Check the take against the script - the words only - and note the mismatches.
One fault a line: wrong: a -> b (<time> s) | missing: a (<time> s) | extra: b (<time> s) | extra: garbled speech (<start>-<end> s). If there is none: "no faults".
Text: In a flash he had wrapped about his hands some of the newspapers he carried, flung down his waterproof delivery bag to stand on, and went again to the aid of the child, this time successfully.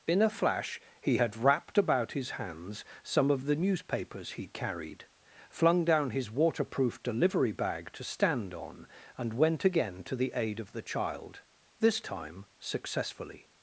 no faults